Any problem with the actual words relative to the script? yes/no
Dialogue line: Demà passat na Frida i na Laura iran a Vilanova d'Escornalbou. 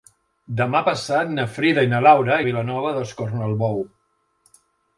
yes